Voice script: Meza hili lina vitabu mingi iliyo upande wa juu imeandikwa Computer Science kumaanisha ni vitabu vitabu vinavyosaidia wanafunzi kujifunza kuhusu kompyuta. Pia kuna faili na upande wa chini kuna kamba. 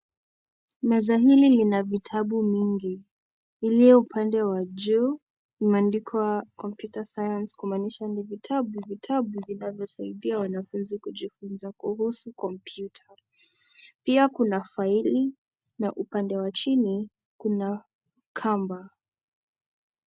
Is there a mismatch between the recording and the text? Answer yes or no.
no